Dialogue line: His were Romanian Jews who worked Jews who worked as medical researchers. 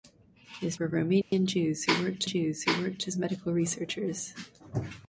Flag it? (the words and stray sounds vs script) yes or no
yes